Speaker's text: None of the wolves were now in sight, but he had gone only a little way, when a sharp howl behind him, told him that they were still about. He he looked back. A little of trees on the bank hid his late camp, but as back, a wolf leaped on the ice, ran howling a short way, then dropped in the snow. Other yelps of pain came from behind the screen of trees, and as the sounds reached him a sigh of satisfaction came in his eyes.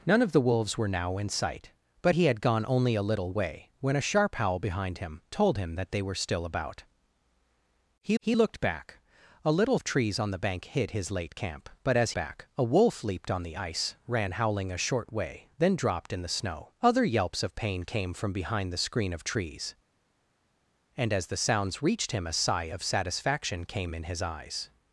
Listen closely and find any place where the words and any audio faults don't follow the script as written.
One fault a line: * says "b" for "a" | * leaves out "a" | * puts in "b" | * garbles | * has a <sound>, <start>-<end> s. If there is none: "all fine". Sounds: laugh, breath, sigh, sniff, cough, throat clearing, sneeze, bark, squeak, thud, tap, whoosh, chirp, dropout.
all fine